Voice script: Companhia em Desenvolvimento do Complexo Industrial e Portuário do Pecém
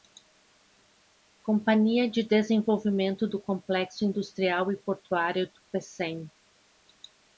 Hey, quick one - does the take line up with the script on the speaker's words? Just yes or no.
no